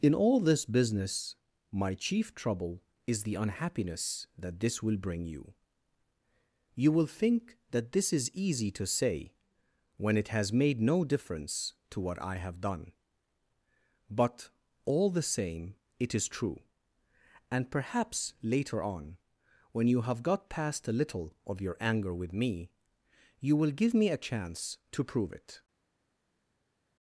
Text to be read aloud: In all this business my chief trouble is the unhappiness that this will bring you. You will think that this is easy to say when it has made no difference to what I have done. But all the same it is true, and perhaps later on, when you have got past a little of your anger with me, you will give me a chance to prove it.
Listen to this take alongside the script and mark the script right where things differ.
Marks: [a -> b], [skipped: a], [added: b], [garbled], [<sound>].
In all this business my chief trouble is the unhappiness that this will bring you. You will think that this is easy to say when it has made no difference to what I have done. But all the same it is true, and perhaps later on, when you have got past a little of your anger with me, you will give me a chance to prove it.